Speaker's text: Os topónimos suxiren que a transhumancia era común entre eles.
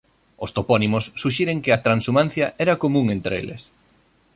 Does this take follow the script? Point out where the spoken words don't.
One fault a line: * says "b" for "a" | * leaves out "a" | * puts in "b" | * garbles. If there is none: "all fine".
all fine